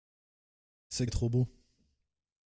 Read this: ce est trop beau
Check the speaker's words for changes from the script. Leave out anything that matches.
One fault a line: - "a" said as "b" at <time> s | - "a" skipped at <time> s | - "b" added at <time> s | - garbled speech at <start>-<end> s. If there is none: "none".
none